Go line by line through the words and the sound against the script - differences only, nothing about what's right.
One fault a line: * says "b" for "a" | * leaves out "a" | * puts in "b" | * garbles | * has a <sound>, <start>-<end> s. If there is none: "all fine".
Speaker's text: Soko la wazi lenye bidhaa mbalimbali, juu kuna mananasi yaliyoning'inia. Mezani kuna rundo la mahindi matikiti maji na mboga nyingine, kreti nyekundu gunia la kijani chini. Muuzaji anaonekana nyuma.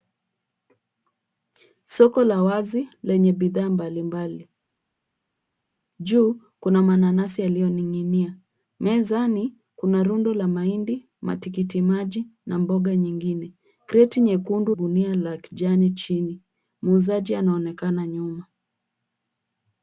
all fine